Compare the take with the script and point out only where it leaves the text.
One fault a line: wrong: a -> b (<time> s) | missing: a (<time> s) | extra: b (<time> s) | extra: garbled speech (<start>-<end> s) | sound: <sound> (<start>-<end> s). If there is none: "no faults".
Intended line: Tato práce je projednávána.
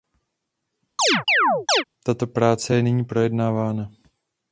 sound: chirp (1.0-1.8 s)
extra: nyní (2.8 s)